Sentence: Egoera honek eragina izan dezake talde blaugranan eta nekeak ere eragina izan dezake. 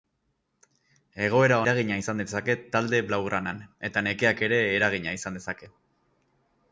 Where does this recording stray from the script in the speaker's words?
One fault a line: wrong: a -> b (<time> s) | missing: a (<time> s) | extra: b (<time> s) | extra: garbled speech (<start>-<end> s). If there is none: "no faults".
missing: honek (1.6 s)